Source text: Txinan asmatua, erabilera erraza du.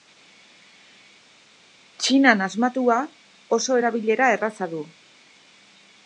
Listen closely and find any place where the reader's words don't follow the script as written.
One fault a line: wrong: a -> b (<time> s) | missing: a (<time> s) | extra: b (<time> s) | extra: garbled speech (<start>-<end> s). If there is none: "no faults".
extra: oso (3.6 s)